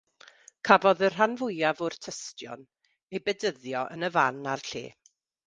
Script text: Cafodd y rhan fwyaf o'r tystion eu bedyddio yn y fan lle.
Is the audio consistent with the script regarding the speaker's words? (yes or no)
no